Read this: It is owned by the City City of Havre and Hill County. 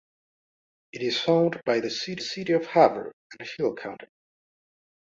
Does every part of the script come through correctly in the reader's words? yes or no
yes